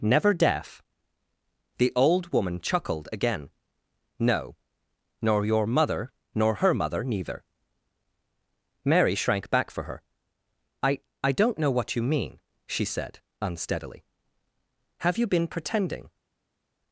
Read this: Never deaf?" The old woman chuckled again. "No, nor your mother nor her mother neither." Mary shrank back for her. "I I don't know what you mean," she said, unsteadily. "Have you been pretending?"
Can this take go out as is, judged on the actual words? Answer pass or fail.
pass